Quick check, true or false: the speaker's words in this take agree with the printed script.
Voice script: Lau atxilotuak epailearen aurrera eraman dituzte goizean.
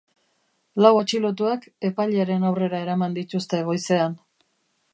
true